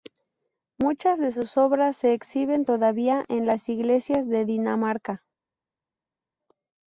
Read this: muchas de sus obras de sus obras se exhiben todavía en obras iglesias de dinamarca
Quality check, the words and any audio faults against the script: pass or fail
fail